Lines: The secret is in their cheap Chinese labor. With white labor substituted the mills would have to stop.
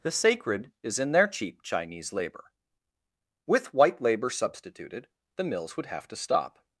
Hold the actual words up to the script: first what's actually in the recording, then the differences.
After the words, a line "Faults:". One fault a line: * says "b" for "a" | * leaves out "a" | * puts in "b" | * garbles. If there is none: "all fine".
The sacred is in their cheap Chinese labor. With white labor substituted the mills would have to stop.
Faults:
* says "sacred" for "secret"